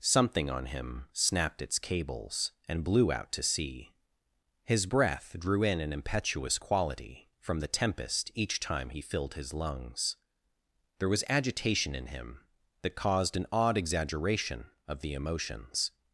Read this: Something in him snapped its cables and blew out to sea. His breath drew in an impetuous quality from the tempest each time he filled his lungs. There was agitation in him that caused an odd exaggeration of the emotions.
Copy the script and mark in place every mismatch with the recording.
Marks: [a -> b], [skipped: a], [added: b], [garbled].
Something [in -> on] him snapped its cables and blew out to sea. His breath drew in an impetuous quality from the tempest each time he filled his lungs. There was agitation in him that caused an odd exaggeration of the emotions.